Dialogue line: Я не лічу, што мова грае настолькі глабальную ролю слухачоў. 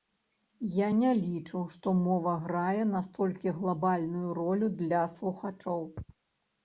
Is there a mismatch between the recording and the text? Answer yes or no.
yes